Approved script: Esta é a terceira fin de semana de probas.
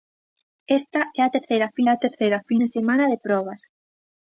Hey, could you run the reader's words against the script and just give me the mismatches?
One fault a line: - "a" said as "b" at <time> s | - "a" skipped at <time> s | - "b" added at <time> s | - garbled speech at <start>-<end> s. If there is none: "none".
- "a terceira fin" added at 1.9 s